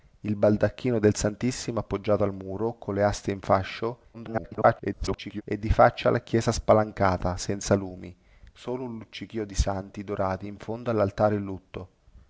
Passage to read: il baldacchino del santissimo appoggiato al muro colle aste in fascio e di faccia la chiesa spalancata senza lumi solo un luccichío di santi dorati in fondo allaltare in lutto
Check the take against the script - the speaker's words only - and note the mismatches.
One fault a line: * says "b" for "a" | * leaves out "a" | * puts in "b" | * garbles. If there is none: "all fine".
* garbles